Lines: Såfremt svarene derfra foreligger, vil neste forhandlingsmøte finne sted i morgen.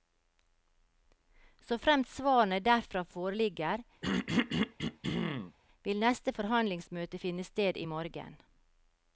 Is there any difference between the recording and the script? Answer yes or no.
no